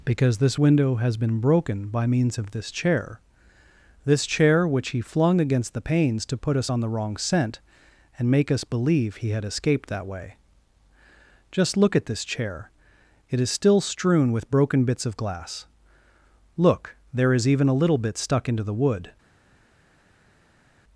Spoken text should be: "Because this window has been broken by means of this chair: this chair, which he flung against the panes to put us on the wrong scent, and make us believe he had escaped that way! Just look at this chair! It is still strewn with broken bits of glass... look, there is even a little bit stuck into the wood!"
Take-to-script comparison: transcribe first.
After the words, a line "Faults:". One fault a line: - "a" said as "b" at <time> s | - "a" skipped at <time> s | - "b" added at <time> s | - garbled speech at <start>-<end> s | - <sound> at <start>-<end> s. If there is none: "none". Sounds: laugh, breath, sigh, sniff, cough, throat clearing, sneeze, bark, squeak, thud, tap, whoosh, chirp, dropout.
"Because this window has been broken by means of this chair: this chair, which he flung against the panes to put us on the wrong scent, and make us believe he had escaped that way! Just look at this chair! It is still strewn with broken bits of glass... look, there is even a little bit stuck into the wood!"
Faults:
none